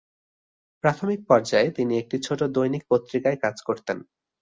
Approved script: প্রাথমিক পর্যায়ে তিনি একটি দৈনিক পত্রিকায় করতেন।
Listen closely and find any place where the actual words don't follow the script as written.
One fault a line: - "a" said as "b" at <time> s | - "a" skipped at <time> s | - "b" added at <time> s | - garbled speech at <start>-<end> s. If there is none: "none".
- "ছোট" added at 2.2 s
- "কাজ" added at 3.4 s